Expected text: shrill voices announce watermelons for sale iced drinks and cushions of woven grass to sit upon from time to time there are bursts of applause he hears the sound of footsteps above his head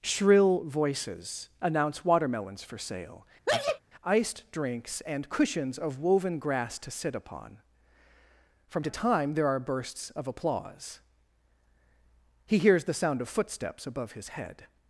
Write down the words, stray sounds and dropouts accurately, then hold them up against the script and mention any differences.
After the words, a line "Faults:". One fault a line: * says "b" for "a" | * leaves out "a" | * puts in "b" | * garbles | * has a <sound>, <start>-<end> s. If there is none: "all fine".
shrill voices announce watermelons for sale iced drinks and cushions of woven grass to sit upon from to time there are bursts of applause he hears the sound of footsteps above his head
Faults:
* has a sneeze, 3.5-3.8 s
* leaves out "time"